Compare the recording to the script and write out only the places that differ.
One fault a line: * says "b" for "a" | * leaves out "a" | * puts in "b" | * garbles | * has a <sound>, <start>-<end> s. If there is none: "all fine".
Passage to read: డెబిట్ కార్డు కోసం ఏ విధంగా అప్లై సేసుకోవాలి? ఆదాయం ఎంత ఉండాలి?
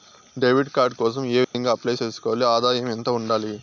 * has a dropout, 1.4-1.5 s